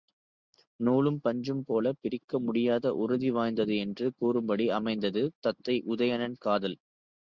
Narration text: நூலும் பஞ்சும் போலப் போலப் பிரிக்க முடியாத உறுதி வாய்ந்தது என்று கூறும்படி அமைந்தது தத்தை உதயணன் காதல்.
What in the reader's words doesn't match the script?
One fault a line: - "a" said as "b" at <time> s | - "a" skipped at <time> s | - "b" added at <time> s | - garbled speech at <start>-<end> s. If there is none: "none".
- "போலப்" skipped at 2.0 s